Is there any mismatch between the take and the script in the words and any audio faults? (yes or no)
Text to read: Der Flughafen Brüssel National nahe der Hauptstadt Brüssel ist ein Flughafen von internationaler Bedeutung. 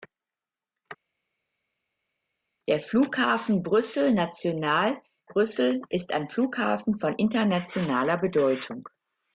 yes